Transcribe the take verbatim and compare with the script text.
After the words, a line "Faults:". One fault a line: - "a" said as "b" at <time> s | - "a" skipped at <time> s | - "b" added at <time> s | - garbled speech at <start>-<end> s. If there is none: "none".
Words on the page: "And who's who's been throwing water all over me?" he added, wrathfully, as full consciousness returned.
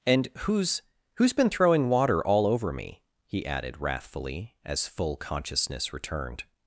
"And who's who's been throwing water all over me?" he added, wrathfully, as full consciousness returned.
Faults:
none